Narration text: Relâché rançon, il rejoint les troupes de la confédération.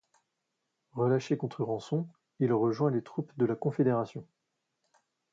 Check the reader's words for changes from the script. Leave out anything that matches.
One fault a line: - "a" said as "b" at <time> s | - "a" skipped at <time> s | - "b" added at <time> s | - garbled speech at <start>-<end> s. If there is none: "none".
- "contre" added at 1.3 s